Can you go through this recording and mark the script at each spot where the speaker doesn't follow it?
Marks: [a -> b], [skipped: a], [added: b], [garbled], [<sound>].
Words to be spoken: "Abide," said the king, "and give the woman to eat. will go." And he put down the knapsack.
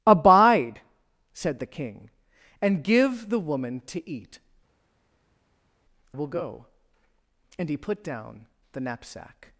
"Abide," said the king, "and give the woman to eat. will go." And he put down the knapsack.